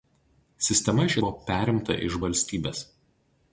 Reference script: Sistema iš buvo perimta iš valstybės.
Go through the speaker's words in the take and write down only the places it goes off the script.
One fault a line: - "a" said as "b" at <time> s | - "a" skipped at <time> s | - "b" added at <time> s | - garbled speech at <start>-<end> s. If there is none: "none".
none